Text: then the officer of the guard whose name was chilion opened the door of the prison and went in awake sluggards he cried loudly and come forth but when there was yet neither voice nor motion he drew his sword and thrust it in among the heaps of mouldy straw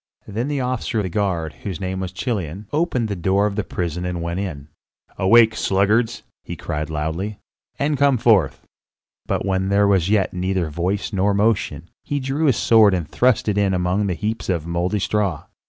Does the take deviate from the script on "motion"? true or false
false